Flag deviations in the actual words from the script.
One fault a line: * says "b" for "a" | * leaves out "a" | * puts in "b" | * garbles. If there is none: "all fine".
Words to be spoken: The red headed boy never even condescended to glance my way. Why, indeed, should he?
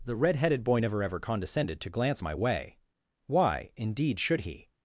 * says "ever" for "even"